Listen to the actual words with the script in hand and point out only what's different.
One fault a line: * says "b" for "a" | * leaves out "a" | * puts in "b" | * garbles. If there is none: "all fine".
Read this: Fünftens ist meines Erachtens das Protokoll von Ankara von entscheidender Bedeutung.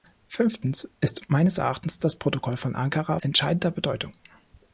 * leaves out "von"